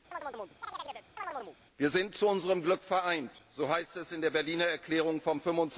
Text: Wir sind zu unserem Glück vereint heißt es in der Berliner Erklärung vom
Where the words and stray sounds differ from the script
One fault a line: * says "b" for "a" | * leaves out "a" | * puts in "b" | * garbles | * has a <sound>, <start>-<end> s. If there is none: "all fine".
* has a chirp, 0.1-1.6 s
* puts in "so"